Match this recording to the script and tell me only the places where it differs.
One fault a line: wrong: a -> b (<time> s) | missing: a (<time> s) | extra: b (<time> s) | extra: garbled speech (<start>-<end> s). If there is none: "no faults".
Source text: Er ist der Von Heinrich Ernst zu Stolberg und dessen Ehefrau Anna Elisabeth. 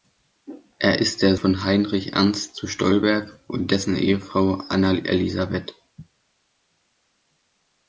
no faults